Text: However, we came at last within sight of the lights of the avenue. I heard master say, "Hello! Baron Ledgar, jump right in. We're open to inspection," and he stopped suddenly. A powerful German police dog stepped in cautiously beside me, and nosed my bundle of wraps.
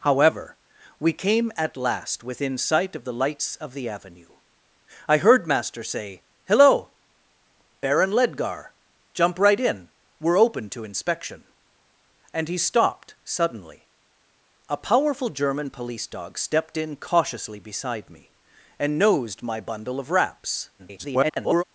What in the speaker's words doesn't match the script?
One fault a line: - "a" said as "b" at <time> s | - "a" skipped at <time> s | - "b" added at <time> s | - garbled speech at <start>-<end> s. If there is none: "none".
- garbled speech at 20.8-21.6 s